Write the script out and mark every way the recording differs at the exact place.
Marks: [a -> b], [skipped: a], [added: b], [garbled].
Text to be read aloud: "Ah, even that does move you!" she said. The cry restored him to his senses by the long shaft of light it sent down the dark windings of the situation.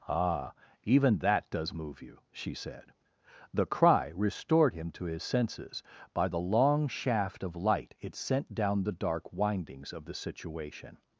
"Ah, even that does move you!" she said. The cry restored him to his senses by the long shaft of light it sent down the dark windings of the situation.